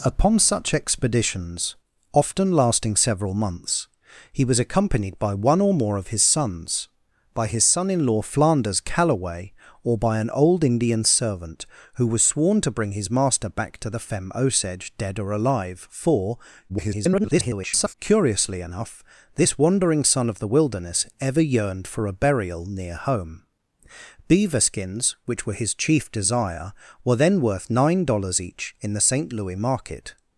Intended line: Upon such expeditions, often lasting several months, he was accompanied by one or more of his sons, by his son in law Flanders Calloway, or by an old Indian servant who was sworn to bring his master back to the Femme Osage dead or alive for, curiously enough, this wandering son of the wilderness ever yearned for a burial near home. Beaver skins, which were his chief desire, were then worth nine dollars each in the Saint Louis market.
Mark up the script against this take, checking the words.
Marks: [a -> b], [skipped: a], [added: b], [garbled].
Upon such expeditions, often lasting several months, he was accompanied by one or more of his sons, by his son in law Flanders Calloway, or by an old Indian servant who was sworn to bring his master back to the Femme Osage dead or alive for, [garbled] curiously enough, this wandering son of the wilderness ever yearned for a burial near home. Beaver skins, which were his chief desire, were then worth nine dollars each in the Saint Louis market.